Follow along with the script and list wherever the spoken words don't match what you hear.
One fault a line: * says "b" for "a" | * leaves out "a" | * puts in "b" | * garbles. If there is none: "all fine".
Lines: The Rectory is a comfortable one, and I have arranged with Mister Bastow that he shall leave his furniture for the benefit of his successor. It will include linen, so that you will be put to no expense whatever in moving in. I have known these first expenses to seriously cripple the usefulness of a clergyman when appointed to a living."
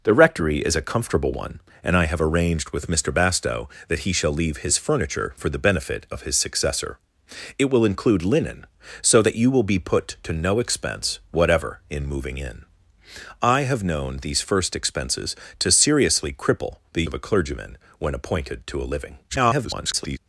* leaves out "usefulness"
* garbles